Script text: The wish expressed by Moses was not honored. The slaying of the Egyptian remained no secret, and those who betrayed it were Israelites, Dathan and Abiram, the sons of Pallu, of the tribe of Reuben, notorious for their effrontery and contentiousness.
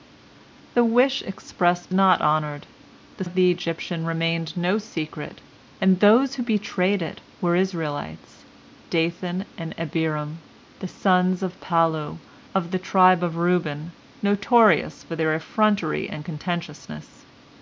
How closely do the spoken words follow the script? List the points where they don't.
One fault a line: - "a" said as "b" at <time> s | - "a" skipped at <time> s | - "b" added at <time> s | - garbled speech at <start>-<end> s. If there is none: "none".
- "by Moses was" skipped at 1.9 s
- "slaying" skipped at 3.2 s